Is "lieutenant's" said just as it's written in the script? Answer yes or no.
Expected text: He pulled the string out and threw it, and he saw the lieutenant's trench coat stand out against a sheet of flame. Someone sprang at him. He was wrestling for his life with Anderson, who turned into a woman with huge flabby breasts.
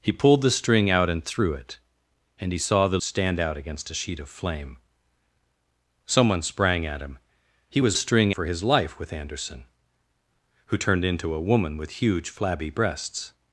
no